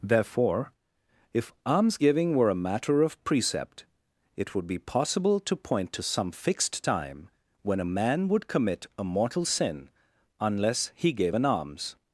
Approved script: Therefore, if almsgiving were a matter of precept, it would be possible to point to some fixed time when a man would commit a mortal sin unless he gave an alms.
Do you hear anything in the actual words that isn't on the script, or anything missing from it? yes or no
no